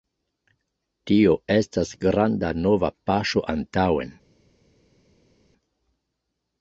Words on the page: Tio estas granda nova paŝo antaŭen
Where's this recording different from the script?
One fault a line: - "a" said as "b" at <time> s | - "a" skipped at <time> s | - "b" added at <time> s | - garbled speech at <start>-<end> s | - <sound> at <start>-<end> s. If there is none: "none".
none